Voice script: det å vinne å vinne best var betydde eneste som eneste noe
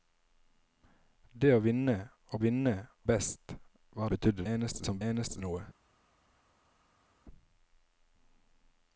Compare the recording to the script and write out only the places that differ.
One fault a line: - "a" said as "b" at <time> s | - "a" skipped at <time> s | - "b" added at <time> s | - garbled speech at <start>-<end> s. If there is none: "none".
none